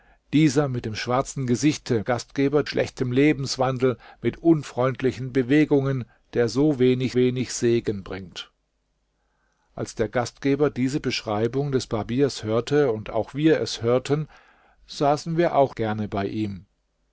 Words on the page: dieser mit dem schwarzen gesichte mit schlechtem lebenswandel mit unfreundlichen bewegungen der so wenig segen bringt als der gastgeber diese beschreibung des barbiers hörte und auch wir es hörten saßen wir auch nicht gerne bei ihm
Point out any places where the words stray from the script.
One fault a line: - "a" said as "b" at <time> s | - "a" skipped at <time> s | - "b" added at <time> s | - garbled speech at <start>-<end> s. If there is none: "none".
- "mit" said as "gastgeber" at 2.0 s
- "wenig" added at 7.2 s
- "nicht" skipped at 15.7 s